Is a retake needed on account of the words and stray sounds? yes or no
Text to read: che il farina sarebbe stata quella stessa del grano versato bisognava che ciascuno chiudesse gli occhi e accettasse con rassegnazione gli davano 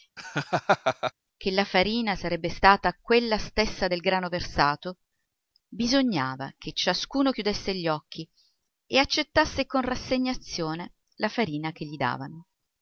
yes